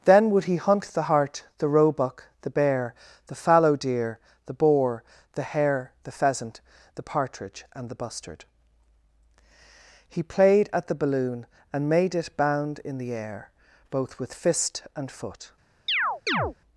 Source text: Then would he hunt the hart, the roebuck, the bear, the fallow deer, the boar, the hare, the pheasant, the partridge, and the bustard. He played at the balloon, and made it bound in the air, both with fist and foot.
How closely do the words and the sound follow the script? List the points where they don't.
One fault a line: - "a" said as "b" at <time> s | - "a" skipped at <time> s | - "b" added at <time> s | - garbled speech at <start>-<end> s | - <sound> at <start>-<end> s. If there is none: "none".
- chirp at 15.9-16.5 s